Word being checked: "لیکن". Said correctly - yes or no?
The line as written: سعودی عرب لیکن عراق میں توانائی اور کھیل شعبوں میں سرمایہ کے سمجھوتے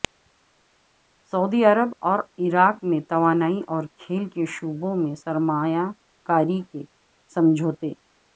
no